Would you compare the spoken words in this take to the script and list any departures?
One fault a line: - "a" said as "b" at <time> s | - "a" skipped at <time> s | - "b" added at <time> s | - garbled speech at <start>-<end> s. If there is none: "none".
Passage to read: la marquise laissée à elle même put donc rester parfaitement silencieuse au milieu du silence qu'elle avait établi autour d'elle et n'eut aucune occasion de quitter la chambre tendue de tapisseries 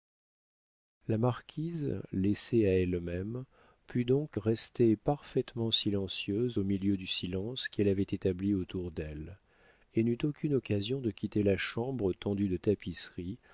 none